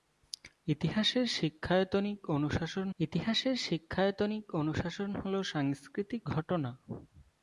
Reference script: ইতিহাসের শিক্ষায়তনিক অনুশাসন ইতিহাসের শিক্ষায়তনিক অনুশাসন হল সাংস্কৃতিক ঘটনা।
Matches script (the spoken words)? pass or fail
pass